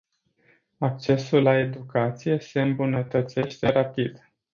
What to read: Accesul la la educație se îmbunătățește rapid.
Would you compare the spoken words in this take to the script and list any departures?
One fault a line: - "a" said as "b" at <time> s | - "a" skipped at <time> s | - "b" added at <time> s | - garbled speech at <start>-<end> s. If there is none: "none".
- "la" skipped at 1.6 s